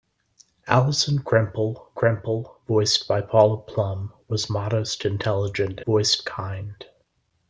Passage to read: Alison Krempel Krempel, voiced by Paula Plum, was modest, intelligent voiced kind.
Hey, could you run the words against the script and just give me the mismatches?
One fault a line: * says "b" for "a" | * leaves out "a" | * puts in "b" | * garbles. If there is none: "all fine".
all fine